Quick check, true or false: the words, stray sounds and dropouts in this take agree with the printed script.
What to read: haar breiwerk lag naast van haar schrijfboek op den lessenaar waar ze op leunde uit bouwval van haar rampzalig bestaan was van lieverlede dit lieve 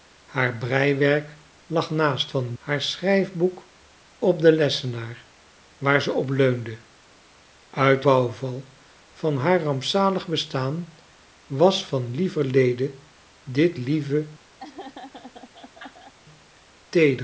false